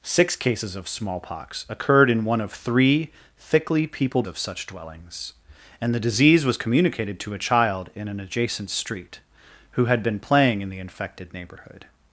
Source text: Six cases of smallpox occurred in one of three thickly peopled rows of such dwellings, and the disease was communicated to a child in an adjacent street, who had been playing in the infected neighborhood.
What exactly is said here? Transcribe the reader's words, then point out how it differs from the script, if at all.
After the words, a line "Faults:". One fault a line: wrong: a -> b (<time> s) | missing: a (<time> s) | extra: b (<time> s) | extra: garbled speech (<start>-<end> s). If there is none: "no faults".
Six cases of smallpox occurred in one of three thickly peopled of such dwellings, and the disease was communicated to a child in an adjacent street, who had been playing in the infected neighborhood.
Faults:
missing: rows (4.3 s)